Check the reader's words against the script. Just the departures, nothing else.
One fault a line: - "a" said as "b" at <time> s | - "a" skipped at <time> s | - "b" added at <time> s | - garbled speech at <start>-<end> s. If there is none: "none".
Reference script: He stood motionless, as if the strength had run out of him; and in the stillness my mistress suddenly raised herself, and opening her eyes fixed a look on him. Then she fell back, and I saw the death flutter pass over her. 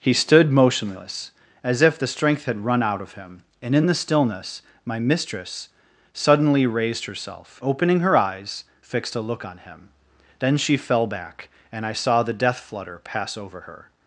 - "and" skipped at 7.6 s